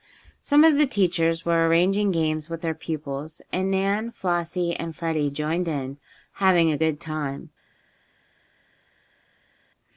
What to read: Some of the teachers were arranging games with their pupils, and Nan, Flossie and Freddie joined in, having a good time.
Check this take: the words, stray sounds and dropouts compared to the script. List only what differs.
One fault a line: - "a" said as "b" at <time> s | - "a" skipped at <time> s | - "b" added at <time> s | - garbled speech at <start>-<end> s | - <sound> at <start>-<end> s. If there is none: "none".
none